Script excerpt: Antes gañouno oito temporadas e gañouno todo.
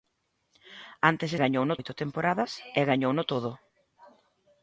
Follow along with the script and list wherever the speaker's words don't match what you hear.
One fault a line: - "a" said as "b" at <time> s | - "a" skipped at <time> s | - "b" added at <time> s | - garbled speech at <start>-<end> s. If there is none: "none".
none